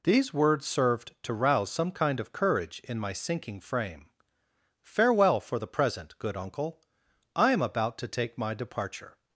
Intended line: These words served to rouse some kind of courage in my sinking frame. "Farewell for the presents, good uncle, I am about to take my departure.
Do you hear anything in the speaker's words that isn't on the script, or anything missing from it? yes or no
yes